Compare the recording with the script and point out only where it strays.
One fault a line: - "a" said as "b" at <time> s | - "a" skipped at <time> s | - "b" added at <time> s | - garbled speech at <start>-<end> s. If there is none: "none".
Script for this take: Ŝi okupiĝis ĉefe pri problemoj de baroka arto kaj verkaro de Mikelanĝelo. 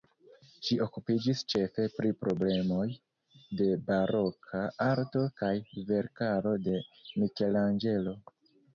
none